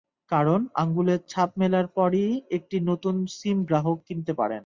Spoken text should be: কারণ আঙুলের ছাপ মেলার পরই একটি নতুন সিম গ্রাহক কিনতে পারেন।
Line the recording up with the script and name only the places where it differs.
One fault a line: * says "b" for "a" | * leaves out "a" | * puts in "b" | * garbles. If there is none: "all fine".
all fine